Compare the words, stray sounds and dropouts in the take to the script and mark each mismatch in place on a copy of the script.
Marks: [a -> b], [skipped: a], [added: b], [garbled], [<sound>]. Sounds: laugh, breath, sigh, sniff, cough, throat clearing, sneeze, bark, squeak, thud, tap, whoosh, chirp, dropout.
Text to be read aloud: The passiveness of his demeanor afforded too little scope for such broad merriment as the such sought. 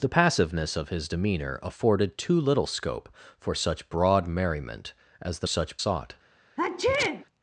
The passiveness of his demeanor afforded too little scope for such broad merriment as the such sought. [sneeze]